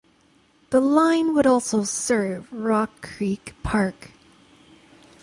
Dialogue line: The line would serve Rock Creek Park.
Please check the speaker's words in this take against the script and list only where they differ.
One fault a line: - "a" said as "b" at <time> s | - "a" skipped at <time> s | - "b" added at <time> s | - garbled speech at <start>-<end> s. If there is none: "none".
- "also" added at 1.4 s